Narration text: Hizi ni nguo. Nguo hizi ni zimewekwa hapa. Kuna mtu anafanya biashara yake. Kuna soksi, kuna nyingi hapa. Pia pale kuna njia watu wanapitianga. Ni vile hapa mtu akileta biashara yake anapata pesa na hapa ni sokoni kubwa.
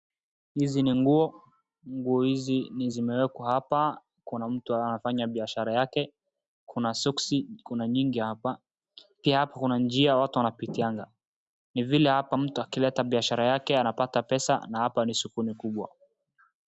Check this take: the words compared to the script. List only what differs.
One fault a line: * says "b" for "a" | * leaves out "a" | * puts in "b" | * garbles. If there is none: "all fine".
* says "hapa" for "pale"